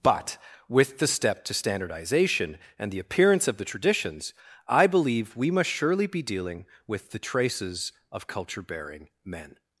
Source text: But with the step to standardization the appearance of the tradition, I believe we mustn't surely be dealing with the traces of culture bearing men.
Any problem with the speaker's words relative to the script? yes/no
yes